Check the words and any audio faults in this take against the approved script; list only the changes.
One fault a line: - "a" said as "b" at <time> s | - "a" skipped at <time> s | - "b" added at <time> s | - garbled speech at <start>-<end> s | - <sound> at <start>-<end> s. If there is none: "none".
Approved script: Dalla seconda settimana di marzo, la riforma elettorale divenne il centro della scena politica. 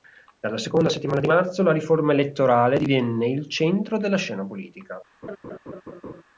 - laugh at 5.2-6.2 s